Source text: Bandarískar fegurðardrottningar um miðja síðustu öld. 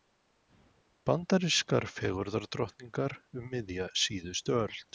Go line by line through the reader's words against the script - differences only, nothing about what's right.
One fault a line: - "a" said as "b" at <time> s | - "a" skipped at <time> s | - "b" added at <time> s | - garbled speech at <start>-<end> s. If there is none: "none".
none